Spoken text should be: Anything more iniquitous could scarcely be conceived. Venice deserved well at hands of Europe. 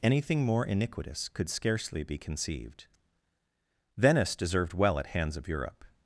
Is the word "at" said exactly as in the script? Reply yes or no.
yes